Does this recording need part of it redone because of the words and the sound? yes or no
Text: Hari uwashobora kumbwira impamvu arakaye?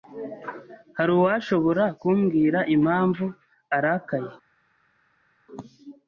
no